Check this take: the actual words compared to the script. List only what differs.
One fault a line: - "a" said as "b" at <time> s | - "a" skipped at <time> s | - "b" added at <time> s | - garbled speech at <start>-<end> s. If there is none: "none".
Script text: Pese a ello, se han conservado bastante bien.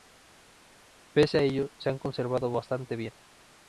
none